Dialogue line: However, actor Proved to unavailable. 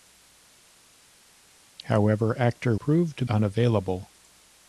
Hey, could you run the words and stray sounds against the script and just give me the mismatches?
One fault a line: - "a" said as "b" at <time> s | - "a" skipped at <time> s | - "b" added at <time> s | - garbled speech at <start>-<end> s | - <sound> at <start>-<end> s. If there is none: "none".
none